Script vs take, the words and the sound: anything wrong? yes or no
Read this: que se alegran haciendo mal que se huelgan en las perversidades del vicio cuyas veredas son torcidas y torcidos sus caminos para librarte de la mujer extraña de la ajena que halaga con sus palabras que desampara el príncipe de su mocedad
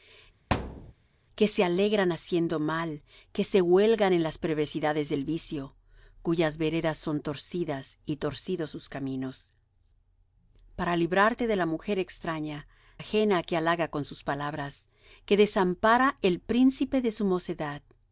yes